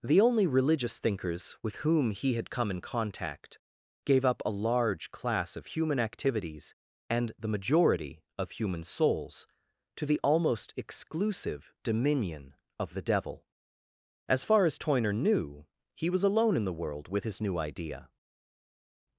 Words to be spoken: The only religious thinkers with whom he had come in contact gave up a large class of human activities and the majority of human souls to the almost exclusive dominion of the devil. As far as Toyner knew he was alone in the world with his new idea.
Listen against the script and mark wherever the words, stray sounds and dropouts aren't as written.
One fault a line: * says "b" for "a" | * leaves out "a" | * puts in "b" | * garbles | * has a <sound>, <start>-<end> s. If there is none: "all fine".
all fine